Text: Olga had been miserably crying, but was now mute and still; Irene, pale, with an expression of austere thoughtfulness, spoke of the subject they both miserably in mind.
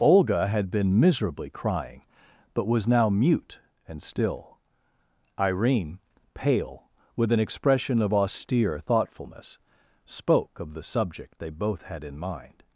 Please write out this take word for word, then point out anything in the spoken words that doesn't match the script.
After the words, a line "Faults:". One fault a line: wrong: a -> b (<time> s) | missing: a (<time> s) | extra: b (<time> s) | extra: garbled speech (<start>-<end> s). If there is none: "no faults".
Olga had been miserably crying, but was now mute and still; Irene, pale, with an expression of austere thoughtfulness, spoke of the subject they both had in mind.
Faults:
wrong: miserably -> had (11.8 s)